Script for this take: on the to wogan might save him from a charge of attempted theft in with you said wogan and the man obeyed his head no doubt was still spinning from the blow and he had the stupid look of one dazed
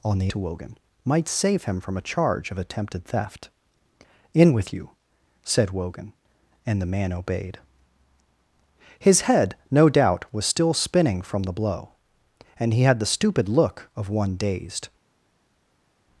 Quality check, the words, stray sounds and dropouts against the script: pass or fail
pass